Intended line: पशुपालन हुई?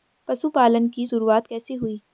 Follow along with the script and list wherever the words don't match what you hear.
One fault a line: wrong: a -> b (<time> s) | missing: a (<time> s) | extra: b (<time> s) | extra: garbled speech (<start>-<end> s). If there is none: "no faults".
extra: की शुरुआत कैसे (0.9 s)